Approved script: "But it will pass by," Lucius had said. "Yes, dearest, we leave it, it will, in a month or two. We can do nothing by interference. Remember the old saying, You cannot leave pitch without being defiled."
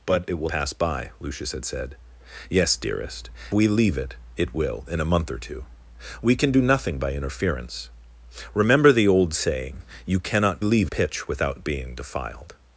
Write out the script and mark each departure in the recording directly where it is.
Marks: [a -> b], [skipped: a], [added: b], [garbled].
"But it will pass by," Lucius had said. "Yes, dearest, we leave it, it will, in a month or two. We can do nothing by interference. Remember the old saying, You cannot leave pitch without being defiled."